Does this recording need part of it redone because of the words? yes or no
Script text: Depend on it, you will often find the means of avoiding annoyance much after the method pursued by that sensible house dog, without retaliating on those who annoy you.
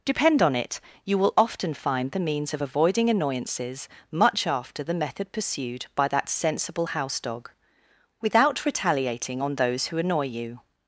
yes